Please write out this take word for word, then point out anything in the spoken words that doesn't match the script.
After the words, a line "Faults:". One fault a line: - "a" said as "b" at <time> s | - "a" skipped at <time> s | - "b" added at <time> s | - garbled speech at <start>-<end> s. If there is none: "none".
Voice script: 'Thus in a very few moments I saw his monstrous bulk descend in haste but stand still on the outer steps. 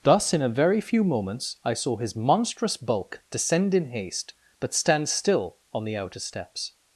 'Thus in a very few moments I saw his monstrous bulk descend in haste but stand still on the outer steps.
Faults:
none